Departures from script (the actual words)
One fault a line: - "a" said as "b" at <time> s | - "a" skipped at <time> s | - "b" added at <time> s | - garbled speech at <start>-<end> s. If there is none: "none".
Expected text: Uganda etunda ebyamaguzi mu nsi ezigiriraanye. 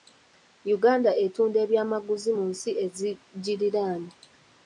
none